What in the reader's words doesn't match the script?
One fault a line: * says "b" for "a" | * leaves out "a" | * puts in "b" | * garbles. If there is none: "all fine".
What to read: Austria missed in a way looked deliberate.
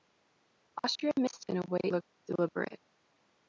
all fine